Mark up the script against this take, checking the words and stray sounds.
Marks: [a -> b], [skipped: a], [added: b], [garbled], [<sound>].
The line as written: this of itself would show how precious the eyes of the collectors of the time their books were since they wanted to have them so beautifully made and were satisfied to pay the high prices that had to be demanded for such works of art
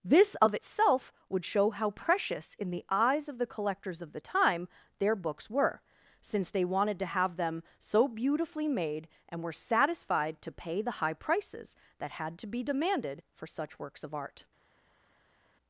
this of itself would show how precious [added: in] the eyes of the collectors of the time their books were since they wanted to have them so beautifully made and were satisfied to pay the high prices that had to be demanded for such works of art